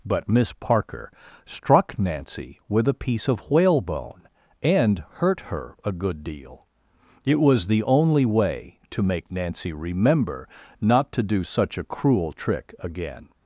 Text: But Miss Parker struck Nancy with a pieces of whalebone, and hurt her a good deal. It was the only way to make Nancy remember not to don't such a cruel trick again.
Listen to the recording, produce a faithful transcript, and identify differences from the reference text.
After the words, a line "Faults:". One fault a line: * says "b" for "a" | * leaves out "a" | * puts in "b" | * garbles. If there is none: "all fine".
But Miss Parker struck Nancy with a piece of whalebone, and hurt her a good deal. It was the only way to make Nancy remember not to do such a cruel trick again.
Faults:
* says "piece" for "pieces"
* says "do" for "don't"